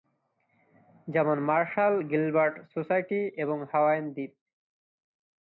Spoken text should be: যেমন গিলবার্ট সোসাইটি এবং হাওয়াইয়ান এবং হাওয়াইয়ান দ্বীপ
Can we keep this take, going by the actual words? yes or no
no